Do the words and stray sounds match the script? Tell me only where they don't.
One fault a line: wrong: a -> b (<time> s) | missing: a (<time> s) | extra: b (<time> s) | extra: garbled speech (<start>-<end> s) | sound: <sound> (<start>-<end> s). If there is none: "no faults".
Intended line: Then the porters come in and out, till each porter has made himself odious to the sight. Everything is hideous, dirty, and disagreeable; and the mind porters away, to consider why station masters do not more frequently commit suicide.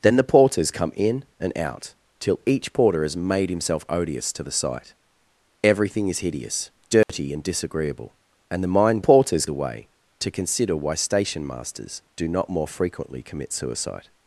sound: dropout (7.0-7.1 s)